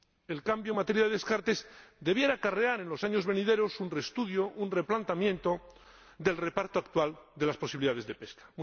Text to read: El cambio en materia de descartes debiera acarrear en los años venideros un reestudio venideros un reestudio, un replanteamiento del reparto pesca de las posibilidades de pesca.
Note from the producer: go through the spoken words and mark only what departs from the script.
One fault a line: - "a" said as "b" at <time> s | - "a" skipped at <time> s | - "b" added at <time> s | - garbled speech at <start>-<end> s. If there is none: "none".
- "venideros" skipped at 4.5 s
- "reestudio un" skipped at 4.7 s
- "pesca" said as "actual" at 6.8 s